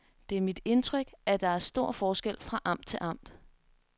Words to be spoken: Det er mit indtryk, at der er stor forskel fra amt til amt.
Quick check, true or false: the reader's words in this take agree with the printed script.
true